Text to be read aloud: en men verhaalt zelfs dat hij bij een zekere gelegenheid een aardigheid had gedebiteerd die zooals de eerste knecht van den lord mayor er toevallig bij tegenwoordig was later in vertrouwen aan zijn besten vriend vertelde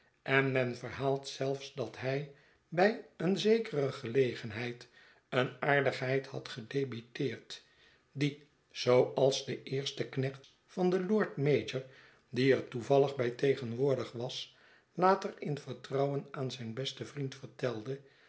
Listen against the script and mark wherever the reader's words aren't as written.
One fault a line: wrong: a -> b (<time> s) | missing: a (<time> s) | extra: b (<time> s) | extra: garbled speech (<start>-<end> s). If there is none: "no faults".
extra: die (12.3 s)